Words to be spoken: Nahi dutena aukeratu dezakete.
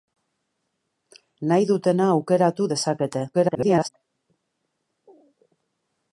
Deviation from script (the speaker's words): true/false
true